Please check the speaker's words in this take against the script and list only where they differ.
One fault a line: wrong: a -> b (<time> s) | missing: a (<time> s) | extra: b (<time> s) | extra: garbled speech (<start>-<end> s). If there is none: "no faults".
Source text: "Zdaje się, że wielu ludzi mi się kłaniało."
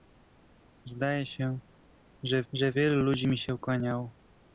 extra: że (2.5 s)